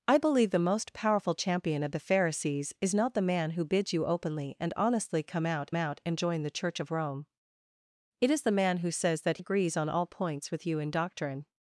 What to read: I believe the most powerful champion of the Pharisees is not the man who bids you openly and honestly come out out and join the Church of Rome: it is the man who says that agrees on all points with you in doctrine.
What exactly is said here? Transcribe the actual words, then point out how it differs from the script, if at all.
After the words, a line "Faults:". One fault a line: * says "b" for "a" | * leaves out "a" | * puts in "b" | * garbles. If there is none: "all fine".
I believe the most powerful champion of the Pharisees is not the man who bids you openly and honestly come out out and join the Church of Rome: it is the man who says that agrees on all points with you in doctrine.
Faults:
all fine